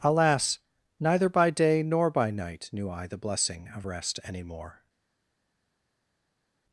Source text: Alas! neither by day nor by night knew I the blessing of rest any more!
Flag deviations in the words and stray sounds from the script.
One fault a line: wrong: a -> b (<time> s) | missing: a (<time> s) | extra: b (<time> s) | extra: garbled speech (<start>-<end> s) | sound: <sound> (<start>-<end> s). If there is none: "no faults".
no faults